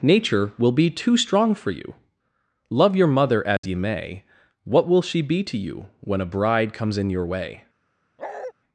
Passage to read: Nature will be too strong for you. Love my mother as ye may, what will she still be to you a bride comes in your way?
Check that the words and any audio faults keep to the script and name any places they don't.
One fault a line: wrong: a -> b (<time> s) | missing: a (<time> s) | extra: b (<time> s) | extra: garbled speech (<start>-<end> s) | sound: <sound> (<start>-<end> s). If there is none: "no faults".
wrong: my -> your (3.0 s)
sound: dropout (3.6-3.6 s)
missing: still (5.2 s)
extra: when (6.0 s)
sound: bark (8.2-8.5 s)